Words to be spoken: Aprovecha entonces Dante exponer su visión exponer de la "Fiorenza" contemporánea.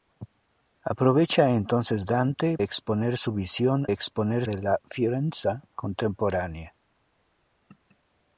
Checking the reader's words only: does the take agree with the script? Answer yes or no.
yes